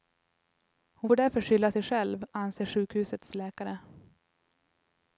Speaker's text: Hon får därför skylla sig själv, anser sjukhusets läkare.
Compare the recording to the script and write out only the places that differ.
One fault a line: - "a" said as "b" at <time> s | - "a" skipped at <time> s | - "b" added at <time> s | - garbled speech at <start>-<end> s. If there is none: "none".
none